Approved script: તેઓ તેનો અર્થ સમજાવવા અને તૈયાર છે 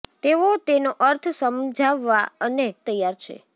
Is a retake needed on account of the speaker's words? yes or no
no